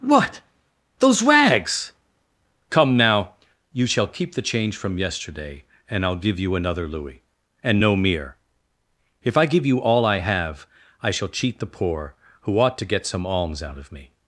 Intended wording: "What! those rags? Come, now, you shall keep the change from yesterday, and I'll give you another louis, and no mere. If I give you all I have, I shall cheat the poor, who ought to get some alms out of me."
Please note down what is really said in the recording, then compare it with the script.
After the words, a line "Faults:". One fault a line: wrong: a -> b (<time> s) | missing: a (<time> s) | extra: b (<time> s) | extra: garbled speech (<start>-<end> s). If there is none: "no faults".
"What! those rags? Come, now, you shall keep the change from yesterday, and I'll give you another louis, and no mere. If I give you all I have, I shall cheat the poor, who ought to get some alms out of me."
Faults:
no faults